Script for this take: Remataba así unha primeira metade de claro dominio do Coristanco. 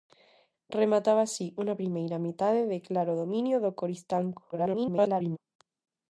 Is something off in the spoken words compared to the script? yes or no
yes